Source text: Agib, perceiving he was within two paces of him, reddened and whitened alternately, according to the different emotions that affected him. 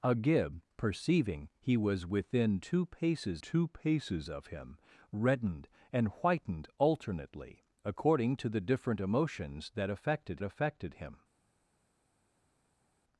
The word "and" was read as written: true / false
true